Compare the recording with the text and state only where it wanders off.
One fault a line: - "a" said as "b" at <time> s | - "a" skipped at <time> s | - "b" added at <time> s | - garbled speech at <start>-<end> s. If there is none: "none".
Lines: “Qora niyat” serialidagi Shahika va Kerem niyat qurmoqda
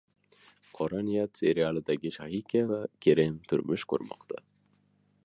- "niyat" said as "turmush" at 3.5 s